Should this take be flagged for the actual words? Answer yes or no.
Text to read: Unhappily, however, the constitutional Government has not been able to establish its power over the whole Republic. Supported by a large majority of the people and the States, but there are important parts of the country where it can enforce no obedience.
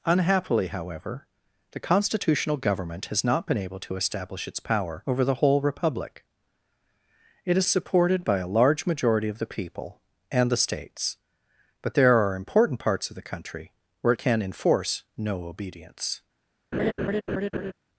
yes